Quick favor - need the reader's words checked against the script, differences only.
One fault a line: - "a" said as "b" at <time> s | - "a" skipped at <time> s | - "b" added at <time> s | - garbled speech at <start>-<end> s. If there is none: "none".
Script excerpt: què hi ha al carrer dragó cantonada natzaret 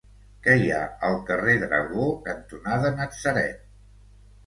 none